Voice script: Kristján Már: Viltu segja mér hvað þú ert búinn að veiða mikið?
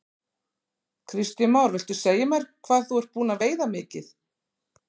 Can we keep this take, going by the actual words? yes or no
yes